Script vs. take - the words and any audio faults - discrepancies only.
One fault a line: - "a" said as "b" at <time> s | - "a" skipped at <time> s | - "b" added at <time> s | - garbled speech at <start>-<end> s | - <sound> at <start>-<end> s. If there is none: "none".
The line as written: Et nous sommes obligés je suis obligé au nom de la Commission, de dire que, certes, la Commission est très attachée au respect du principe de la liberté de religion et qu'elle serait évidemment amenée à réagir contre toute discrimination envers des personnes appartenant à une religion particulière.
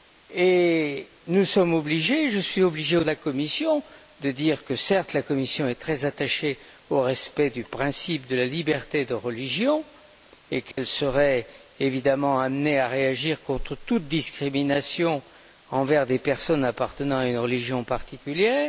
- "nom" skipped at 3.0 s
- dropout at 10.7-10.8 s